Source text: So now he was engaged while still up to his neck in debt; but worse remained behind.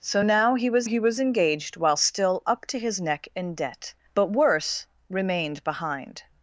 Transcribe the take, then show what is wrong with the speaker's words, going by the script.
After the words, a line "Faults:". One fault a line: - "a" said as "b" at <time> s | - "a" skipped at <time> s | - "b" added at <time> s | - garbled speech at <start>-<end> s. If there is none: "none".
So now he was he was engaged while still up to his neck in debt; but worse remained behind.
Faults:
- "he was" added at 0.8 s